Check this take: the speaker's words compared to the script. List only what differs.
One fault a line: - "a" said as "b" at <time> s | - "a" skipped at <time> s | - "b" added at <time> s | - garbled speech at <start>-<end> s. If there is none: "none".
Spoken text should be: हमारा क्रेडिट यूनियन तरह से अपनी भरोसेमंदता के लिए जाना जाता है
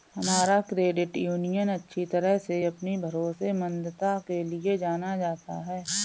- "अच्छी" added at 1.7 s